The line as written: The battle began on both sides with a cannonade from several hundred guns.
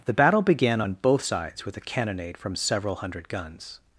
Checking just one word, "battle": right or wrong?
right